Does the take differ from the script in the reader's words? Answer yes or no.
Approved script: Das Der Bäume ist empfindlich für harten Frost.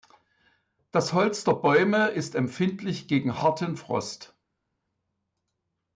yes